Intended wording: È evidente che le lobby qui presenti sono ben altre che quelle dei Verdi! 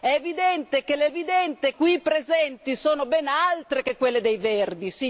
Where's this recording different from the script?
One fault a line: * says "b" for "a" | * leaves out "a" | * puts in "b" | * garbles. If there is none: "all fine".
* says "evidente" for "lobby"